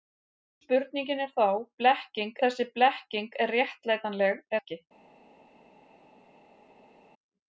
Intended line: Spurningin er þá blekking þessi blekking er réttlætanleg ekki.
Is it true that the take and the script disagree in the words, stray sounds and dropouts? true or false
false